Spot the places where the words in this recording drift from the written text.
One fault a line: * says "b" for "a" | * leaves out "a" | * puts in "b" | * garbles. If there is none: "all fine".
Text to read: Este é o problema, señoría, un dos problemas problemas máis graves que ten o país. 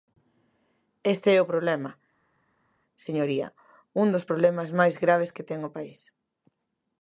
* leaves out "problemas"